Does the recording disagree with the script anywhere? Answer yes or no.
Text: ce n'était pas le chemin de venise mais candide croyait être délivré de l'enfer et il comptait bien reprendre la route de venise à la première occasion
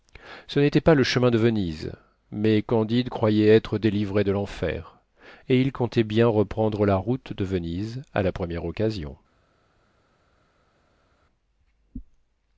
no